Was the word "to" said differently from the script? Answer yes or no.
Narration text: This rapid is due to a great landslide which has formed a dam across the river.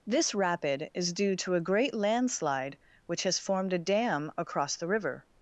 no